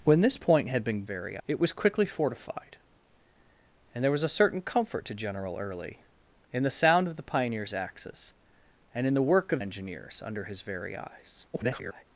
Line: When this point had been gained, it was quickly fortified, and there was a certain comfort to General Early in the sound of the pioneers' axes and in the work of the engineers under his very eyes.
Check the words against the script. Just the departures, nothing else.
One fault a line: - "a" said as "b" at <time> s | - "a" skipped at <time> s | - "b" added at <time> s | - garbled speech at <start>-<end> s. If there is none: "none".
- "gained" said as "very" at 1.0 s
- "the" skipped at 9.6 s
- garbled speech at 11.5-12.0 s